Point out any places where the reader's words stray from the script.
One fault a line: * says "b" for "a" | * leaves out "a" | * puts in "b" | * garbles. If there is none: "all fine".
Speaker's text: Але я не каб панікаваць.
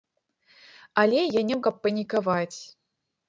all fine